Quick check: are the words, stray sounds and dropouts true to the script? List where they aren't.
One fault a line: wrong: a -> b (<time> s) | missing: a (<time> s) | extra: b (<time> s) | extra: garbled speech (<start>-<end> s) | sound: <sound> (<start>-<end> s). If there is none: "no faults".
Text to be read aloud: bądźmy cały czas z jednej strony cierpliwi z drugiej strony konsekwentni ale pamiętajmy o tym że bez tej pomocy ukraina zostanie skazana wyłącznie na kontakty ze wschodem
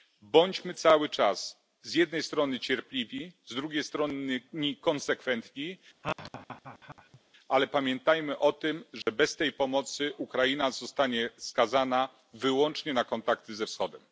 sound: laugh (6.0-7.2 s)
sound: dropout (9.0-9.1 s)